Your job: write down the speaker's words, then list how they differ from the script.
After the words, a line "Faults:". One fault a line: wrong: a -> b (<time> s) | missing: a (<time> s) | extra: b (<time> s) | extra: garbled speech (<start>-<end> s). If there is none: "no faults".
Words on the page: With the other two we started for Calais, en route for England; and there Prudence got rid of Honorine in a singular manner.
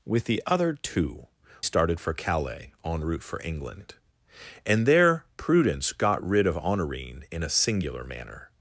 With the other two started for Calais, en route for England; and there Prudence got rid of Honorine in a singular manner.
Faults:
missing: we (1.3 s)